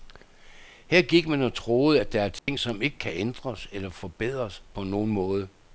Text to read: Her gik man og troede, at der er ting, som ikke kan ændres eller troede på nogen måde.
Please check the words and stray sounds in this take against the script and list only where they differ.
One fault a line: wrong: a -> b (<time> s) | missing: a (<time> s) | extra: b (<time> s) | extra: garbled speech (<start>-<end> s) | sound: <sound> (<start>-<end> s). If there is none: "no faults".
sound: dropout (2.4-2.5 s)
wrong: troede -> forbedres (3.9 s)